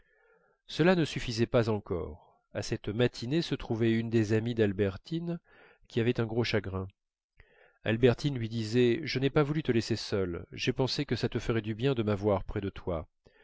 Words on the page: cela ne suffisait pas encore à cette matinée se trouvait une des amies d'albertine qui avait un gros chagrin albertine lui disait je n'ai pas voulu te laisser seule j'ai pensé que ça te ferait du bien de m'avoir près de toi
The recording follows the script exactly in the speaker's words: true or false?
true